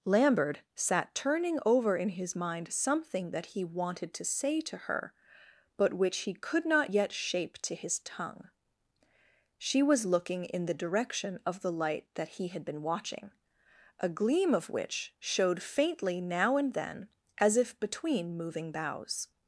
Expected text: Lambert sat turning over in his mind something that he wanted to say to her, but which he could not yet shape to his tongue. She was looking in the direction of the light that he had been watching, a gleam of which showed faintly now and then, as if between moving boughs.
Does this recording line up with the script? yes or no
yes